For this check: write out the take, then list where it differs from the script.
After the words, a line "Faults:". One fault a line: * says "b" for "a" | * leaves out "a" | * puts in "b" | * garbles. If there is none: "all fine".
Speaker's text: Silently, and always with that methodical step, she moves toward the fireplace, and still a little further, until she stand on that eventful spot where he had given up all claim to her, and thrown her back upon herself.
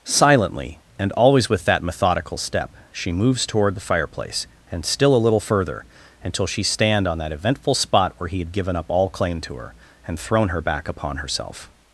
Silently, and always with that methodical step, she moves toward the fireplace, and still a little further, until she stand on that eventful spot where he had given up all claim to her, and thrown her back upon herself.
Faults:
all fine